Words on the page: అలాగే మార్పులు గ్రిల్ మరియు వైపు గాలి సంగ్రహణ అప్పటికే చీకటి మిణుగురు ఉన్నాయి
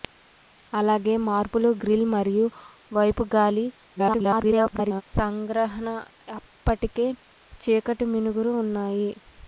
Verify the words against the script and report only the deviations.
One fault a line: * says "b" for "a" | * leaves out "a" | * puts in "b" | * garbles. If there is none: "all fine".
* garbles